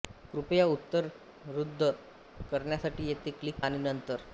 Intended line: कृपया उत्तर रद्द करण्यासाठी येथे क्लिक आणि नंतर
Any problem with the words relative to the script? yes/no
no